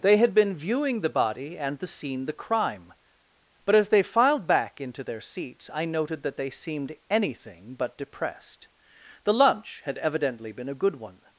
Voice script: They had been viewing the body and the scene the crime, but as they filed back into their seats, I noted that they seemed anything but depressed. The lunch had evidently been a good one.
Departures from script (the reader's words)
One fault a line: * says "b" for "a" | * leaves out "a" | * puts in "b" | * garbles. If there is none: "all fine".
all fine